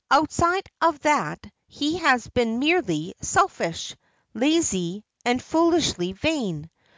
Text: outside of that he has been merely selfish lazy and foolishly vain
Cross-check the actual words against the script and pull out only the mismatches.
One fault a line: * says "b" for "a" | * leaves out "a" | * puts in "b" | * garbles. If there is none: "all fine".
all fine